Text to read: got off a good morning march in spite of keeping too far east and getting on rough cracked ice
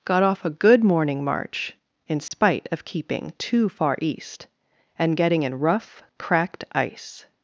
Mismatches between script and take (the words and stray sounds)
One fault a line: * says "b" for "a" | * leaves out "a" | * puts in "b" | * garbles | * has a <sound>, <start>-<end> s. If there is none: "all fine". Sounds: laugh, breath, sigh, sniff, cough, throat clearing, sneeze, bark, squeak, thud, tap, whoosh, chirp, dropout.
* has a dropout, 2.3-2.3 s
* says "in" for "on"